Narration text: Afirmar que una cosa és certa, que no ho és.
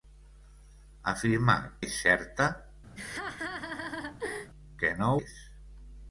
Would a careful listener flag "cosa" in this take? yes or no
yes